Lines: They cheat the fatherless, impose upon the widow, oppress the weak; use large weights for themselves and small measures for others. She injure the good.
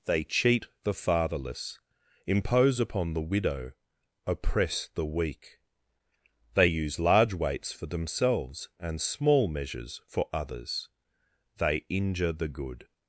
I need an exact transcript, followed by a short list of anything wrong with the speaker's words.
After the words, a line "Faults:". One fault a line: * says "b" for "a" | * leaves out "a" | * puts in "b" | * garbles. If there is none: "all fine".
They cheat the fatherless, impose upon the widow, oppress the weak; they use large weights for themselves and small measures for others. They injure the good.
Faults:
* puts in "they"
* says "They" for "She"